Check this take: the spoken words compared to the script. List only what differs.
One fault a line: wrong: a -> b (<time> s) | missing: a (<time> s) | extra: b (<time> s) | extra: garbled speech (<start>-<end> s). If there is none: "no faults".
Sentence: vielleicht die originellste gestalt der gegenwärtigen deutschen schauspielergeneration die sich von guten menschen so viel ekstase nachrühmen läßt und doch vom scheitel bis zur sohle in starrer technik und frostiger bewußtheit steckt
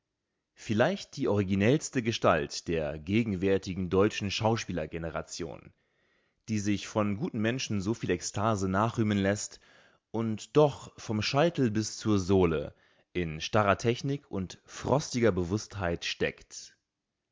no faults